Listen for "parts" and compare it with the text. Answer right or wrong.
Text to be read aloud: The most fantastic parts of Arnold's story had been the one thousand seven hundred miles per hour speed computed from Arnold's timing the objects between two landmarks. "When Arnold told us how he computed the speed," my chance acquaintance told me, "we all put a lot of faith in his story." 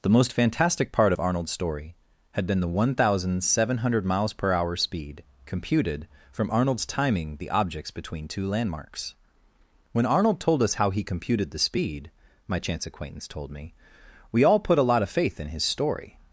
wrong